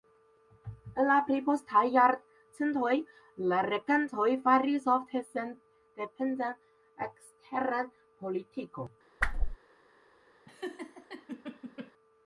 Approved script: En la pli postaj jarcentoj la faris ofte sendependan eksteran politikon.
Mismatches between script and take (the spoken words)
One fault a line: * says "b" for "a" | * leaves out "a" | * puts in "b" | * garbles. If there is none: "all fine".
* puts in "regantoj"